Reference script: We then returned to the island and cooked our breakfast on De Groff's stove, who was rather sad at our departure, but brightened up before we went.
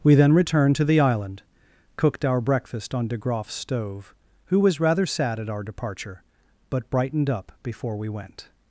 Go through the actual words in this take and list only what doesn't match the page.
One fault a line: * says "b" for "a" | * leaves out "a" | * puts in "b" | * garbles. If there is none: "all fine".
* leaves out "and"